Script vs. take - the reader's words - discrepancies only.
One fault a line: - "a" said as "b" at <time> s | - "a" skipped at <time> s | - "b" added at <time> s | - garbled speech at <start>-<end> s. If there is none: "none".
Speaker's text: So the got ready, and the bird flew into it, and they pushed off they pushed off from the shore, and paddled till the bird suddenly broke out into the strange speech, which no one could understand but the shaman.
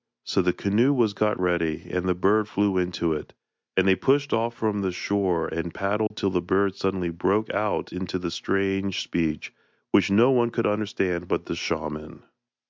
- "canoe was" added at 0.5 s
- "they pushed off" skipped at 4.5 s